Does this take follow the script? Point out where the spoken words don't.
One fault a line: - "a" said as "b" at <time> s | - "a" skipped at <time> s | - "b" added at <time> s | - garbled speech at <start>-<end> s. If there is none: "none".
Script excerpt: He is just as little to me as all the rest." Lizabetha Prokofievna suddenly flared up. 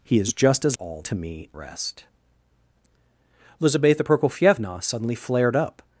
- "little" said as "all" at 0.7 s
- "as all the" skipped at 1.5 s